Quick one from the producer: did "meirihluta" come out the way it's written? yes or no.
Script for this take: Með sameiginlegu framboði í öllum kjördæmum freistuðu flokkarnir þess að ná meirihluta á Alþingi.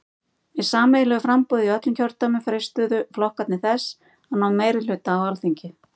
yes